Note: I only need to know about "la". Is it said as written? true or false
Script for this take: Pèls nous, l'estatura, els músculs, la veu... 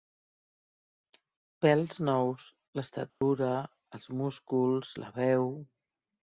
true